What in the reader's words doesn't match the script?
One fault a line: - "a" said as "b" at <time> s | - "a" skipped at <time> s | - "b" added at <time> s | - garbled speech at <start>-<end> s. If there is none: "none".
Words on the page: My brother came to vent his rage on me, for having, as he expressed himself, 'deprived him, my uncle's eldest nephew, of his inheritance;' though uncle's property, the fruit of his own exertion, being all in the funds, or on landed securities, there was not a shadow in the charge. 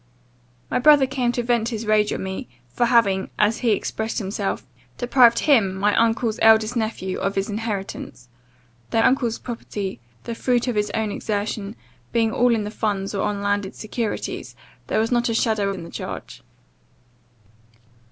none